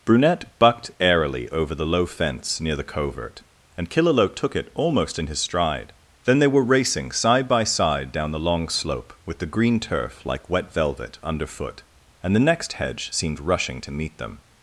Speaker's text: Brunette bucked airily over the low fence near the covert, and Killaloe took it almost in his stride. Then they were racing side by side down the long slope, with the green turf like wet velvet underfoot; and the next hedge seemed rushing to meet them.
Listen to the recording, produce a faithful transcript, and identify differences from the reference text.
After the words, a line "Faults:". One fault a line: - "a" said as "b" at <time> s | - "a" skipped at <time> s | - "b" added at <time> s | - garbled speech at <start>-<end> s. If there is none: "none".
Brunette bucked airily over the low fence near the covert, and Killaloe took it almost in his stride. Then they were racing side by side down the long slope, with the green turf like wet velvet underfoot; and the next hedge seemed rushing to meet them.
Faults:
none